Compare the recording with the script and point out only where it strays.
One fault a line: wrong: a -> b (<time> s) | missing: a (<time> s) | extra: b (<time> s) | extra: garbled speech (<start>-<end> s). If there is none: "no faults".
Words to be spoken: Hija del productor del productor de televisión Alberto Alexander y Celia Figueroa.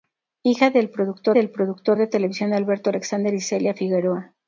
no faults